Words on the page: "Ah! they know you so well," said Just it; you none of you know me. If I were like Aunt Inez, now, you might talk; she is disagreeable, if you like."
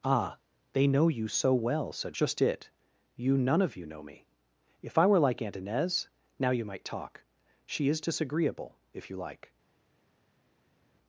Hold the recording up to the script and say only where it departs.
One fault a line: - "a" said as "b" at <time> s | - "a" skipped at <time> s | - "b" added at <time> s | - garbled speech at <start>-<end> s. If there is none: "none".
none